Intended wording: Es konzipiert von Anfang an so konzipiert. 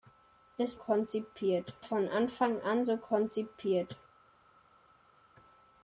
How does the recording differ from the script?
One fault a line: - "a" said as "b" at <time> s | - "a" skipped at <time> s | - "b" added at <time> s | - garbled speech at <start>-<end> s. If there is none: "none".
none